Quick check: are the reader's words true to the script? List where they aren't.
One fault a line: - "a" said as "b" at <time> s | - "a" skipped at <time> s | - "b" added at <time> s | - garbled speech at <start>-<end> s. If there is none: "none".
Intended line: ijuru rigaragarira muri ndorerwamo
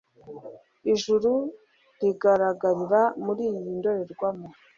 - "iyi" added at 3.5 s